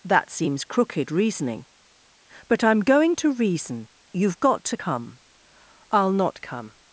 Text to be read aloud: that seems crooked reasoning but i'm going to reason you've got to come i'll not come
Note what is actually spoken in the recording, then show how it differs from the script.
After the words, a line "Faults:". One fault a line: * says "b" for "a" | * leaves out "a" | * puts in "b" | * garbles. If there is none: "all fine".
that seems crooked reasoning but i'm going to reason you've got to come i'll not come
Faults:
all fine